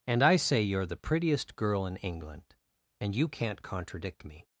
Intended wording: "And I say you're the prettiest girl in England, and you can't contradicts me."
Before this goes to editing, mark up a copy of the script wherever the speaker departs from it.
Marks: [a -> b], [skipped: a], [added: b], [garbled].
"And I say you're the prettiest girl in England, and you can't [contradicts -> contradict] me."